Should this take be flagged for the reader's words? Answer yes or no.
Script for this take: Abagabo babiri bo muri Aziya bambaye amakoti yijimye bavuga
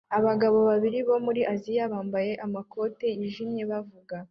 no